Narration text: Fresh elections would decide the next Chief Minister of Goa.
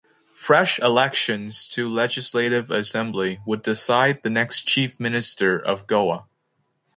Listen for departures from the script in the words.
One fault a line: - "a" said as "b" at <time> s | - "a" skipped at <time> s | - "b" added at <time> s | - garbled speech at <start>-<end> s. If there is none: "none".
- "to Legislative Assembly" added at 1.7 s